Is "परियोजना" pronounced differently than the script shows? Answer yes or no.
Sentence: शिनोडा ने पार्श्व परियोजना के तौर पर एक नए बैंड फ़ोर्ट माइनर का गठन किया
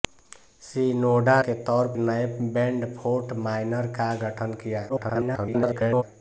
yes